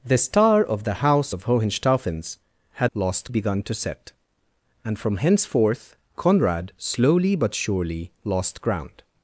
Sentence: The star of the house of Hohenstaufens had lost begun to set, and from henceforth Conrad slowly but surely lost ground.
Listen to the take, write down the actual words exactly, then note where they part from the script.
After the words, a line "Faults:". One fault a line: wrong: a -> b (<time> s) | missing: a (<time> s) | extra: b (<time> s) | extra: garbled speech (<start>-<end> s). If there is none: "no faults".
The star of the house of Hohenstaufens had lost begun to set, and from henceforth Conrad slowly but surely lost ground.
Faults:
no faults